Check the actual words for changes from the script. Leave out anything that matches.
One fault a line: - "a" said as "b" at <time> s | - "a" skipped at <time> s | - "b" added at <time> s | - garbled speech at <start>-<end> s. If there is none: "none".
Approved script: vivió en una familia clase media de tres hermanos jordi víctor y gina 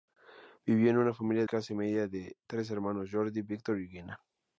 none